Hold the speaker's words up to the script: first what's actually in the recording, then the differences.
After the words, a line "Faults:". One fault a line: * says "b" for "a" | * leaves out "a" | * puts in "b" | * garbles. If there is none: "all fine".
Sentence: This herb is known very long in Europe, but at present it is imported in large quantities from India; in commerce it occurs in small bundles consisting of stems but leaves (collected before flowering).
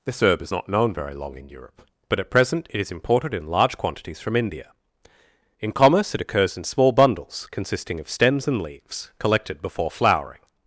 This herb is not known very long in Europe, but at present it is imported in large quantities from India; in commerce it occurs in small bundles consisting of stems and leaves (collected before flowering).
Faults:
* puts in "not"
* says "and" for "but"